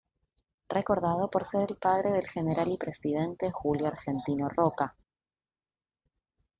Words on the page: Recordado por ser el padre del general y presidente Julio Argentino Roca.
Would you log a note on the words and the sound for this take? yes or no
no